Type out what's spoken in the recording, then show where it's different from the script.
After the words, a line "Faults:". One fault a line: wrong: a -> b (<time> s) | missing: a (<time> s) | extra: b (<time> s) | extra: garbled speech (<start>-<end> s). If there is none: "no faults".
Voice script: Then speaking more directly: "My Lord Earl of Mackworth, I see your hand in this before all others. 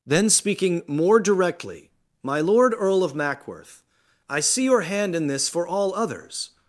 Then speaking more directly: "My Lord Earl of Mackworth, I see your hand in this for all others.
Faults:
wrong: before -> for (5.5 s)